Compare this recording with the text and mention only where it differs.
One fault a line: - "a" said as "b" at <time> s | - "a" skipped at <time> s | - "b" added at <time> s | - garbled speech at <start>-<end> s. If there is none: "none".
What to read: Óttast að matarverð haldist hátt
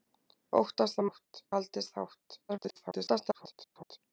- "matarverð" said as "hátt" at 1.1 s
- garbled speech at 2.5-4.0 s